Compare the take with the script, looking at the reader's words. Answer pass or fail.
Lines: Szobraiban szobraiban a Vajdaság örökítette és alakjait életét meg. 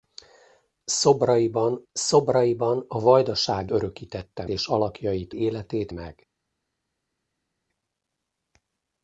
pass